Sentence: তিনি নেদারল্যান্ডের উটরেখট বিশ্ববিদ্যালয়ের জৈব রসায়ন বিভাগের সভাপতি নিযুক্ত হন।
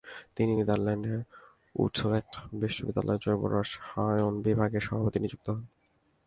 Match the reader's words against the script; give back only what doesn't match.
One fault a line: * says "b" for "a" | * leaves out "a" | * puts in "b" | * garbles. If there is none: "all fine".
all fine